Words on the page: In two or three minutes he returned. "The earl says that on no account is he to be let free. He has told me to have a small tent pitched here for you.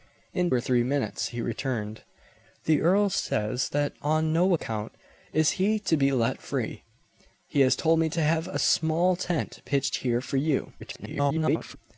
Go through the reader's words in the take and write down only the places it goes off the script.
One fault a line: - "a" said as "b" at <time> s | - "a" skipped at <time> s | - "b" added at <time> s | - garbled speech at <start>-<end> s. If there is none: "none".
- "two" skipped at 0.5 s
- garbled speech at 10.8-11.8 s